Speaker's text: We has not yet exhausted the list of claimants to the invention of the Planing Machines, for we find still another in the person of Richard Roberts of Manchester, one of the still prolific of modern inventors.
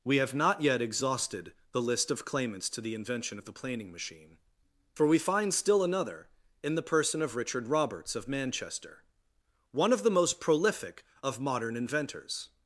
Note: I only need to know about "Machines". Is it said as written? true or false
false